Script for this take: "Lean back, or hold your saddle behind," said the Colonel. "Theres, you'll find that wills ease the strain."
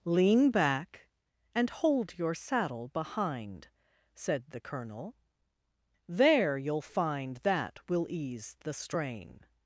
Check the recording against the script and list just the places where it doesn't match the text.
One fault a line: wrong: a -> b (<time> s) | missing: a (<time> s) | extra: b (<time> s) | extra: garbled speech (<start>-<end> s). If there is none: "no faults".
wrong: or -> and (1.5 s)
wrong: Theres -> There (6.1 s)
wrong: wills -> will (7.9 s)